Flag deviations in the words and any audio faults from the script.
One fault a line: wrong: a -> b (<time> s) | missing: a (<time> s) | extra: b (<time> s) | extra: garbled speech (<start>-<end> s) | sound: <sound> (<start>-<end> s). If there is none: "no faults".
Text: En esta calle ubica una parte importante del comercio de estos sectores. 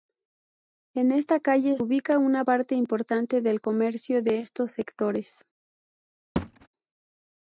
sound: thud (6.4-6.7 s)